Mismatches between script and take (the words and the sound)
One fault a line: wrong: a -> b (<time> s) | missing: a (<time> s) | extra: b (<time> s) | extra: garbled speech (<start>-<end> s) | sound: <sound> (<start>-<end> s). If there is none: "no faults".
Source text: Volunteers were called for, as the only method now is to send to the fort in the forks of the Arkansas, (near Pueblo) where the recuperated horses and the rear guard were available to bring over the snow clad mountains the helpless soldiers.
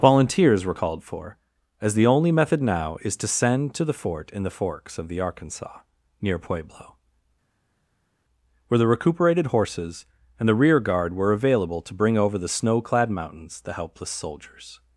no faults